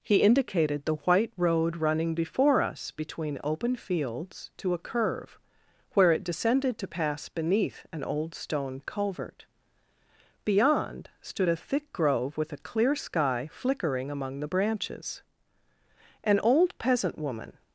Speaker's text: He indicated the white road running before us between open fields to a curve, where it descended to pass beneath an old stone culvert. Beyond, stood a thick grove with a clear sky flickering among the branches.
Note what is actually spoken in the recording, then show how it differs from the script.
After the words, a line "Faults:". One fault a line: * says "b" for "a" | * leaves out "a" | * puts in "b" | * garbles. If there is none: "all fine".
He indicated the white road running before us between open fields to a curve, where it descended to pass beneath an old stone culvert. Beyond, stood a thick grove with a clear sky flickering among the branches. An old peasant woman
Faults:
* puts in "An old peasant woman"